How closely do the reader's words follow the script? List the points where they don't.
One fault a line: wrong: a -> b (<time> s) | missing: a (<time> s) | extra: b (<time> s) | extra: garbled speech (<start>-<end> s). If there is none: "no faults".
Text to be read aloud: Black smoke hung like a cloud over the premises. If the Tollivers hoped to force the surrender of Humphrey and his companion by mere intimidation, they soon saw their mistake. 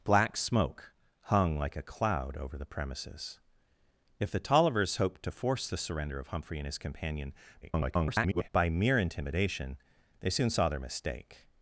extra: garbled speech (7.6-8.5 s)